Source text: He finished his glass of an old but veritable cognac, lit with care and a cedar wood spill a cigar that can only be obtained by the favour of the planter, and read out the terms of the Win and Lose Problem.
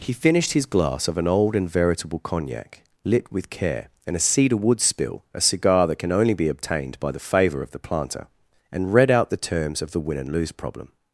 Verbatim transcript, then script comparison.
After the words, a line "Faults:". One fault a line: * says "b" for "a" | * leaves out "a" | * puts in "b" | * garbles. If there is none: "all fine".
He finished his glass of an old and veritable cognac, lit with care and a cedar wood spill a cigar that can only be obtained by the favour of the planter, and read out the terms of the Win and Lose Problem.
Faults:
* says "and" for "but"